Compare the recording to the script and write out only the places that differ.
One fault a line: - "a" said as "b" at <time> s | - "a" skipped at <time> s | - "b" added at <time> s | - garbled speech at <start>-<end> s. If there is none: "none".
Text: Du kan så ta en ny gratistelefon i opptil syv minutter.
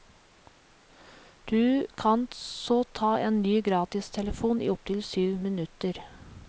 none